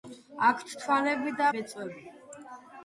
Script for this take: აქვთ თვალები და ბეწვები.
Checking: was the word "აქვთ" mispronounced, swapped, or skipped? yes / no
no